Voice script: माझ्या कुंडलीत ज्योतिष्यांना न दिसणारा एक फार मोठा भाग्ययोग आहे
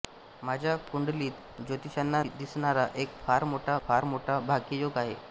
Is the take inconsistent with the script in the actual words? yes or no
yes